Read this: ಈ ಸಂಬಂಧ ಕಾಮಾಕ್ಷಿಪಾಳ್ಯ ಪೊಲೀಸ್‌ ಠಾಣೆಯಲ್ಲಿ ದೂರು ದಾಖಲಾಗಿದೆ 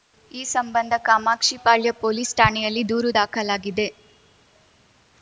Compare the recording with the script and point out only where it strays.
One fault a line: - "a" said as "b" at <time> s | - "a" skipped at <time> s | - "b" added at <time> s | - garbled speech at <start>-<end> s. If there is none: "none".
none